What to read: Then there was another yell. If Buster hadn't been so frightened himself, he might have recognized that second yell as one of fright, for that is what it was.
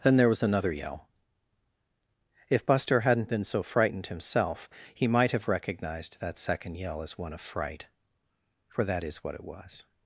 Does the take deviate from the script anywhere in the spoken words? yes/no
no